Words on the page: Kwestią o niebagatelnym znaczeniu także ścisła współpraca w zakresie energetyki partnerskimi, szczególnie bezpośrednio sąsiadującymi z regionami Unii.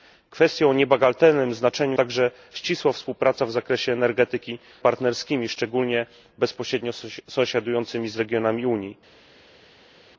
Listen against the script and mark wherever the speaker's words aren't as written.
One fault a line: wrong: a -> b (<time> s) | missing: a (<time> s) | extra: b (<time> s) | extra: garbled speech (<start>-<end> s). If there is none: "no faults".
no faults